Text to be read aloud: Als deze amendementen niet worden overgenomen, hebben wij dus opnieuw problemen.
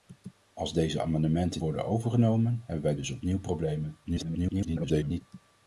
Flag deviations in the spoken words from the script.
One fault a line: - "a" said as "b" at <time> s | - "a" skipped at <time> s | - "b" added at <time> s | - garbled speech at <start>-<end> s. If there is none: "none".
- "niet" skipped at 1.6 s
- garbled speech at 4.0-5.2 s